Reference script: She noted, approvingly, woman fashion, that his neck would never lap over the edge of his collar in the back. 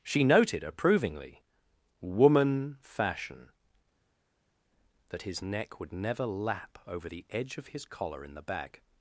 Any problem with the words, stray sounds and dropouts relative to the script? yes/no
no